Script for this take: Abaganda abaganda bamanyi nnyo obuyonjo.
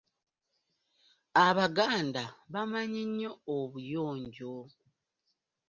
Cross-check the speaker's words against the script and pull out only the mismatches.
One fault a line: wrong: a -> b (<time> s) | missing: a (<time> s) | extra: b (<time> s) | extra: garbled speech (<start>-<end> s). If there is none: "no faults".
missing: abaganda (2.2 s)